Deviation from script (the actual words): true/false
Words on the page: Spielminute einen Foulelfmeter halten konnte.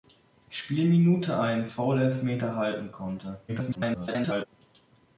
true